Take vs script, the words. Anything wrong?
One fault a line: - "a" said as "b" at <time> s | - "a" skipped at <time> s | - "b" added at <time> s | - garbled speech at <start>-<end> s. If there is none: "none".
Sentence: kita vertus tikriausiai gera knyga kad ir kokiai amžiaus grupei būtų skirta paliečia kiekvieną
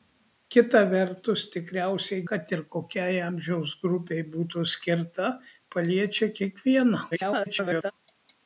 - "gera knyga" skipped at 2.2 s
- garbled speech at 7.1-7.9 s